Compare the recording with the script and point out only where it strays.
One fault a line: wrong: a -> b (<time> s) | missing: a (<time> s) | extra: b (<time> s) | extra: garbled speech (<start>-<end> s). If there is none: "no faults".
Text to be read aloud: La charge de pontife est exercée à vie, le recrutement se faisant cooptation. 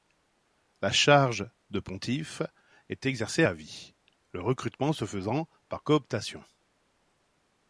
extra: par (5.7 s)